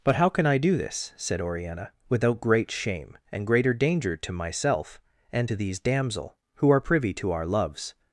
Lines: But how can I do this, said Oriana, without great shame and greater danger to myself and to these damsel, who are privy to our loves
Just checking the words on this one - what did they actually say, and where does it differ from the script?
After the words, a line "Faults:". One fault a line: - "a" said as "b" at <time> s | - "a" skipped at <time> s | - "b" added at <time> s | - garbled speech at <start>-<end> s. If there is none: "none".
But how can I do this, said Oriana, without great shame and greater danger to myself and to these damsel, who are privy to our loves
Faults:
none